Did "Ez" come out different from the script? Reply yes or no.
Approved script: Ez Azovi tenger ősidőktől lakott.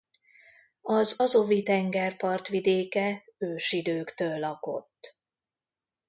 yes